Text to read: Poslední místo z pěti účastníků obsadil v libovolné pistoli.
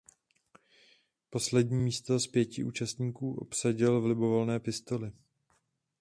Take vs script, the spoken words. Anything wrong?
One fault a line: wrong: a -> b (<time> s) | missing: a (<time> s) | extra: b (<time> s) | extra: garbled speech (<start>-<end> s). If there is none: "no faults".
no faults